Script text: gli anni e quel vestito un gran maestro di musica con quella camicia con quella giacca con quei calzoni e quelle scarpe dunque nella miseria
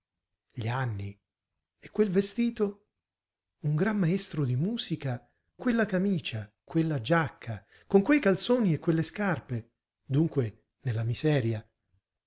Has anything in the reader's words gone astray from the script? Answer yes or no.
yes